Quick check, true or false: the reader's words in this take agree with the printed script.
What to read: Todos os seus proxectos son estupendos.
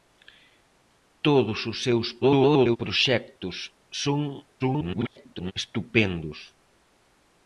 false